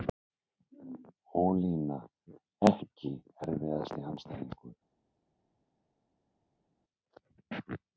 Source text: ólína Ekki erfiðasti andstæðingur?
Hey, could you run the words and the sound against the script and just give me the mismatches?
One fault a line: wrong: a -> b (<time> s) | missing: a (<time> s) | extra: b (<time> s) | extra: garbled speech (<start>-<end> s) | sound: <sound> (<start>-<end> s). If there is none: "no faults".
no faults